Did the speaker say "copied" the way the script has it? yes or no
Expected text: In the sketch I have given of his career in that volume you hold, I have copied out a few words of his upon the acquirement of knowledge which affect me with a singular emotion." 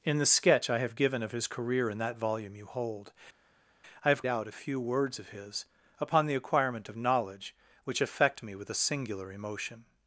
no